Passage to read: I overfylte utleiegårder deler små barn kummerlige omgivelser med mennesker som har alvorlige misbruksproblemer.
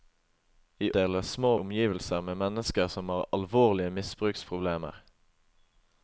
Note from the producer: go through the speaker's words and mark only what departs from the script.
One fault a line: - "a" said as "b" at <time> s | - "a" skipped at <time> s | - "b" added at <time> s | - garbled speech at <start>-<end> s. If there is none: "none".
- "overfylte utleiegårder" skipped at 0.9 s
- "barn kummerlige" skipped at 1.5 s